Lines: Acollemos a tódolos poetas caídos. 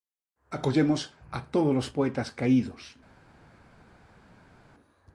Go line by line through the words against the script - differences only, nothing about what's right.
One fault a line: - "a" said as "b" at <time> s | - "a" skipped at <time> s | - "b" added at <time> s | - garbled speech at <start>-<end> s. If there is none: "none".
none